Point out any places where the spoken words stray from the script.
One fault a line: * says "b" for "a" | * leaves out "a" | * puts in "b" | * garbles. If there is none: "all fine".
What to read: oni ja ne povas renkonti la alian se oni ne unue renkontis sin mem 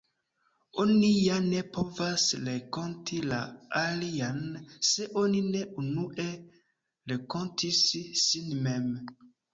all fine